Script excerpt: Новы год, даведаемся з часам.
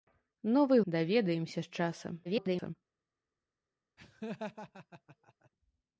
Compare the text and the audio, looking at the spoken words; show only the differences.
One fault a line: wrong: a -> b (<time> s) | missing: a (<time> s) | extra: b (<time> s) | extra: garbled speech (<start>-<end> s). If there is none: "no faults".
missing: год (0.8 s)
extra: garbled speech (2.2-2.7 s)